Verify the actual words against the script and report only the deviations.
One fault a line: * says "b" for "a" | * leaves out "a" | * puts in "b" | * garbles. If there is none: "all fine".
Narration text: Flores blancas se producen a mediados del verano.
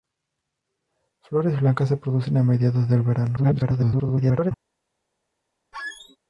* garbles